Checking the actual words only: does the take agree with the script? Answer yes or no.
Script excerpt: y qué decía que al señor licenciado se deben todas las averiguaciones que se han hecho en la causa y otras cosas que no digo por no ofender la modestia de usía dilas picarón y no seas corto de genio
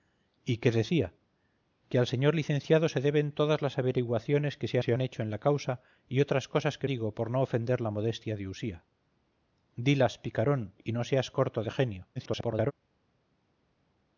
no